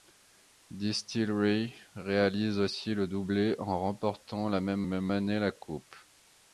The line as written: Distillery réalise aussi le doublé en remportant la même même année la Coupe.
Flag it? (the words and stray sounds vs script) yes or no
no